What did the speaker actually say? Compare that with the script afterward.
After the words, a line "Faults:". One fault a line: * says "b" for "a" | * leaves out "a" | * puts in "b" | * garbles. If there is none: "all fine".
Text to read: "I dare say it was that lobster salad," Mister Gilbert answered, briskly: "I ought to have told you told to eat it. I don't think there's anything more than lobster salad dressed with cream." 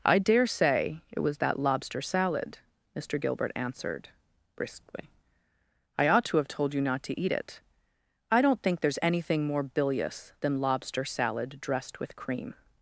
"I dare say it was that lobster salad," Mister Gilbert answered, briskly: "I ought to have told you not to eat it. I don't think there's anything more bilious than lobster salad dressed with cream."
Faults:
* says "not" for "told"
* puts in "bilious"